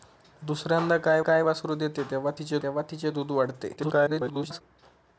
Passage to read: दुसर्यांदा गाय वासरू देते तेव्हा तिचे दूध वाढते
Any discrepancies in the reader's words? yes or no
yes